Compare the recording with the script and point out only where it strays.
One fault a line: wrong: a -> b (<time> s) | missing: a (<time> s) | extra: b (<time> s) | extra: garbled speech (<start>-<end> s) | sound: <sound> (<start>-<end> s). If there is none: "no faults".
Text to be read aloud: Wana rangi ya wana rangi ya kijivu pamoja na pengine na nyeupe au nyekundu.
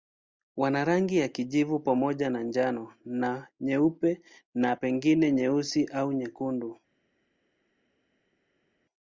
missing: wana rangi ya (1.3 s)
wrong: pengine -> njano (2.4 s)
extra: na pengine nyeusi (4.5 s)